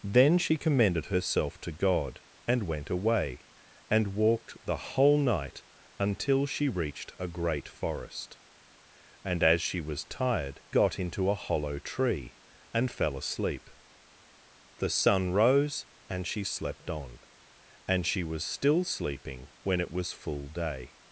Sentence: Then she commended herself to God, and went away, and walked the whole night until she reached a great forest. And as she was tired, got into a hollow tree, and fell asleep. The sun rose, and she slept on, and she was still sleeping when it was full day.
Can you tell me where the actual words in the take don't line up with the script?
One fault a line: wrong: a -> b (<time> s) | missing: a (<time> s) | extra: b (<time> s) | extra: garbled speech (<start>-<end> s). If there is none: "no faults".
no faults